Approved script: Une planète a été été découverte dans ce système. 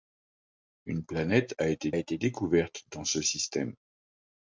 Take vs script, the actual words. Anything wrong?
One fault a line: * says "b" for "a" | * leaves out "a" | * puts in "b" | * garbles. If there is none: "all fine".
all fine